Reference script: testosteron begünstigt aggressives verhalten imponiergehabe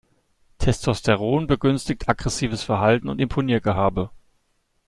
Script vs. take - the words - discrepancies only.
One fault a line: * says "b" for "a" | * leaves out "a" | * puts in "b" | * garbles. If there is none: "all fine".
* puts in "und"